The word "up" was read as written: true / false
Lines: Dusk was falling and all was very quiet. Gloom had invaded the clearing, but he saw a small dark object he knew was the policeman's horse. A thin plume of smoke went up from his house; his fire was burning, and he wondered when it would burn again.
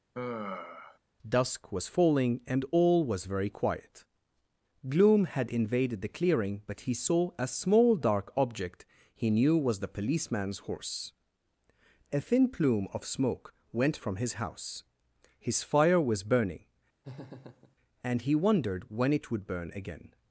false